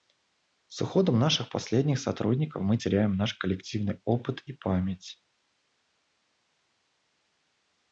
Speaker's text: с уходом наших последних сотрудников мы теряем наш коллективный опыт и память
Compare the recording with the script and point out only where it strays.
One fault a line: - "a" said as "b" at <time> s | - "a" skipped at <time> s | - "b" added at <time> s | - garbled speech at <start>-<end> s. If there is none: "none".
none